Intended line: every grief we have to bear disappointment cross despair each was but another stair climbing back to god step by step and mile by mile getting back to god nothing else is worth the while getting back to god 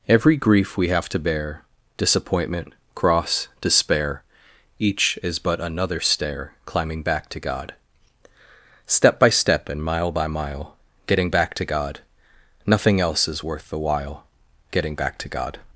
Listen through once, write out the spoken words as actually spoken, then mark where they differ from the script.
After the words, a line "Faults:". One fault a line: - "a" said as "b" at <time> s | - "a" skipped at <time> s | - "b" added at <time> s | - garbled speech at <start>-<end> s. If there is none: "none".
every grief we have to bear disappointment cross despair each is but another stair climbing back to god step by step and mile by mile getting back to god nothing else is worth the while getting back to god
Faults:
- "was" said as "is" at 5.2 s